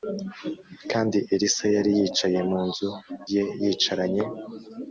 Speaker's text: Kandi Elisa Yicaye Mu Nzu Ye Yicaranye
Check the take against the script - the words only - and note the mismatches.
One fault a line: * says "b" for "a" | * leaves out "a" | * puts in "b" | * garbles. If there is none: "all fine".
* puts in "Yari"